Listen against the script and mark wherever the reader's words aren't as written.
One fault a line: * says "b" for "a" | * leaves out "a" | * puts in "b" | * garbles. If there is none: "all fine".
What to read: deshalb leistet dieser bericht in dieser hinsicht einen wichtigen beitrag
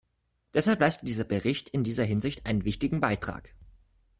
all fine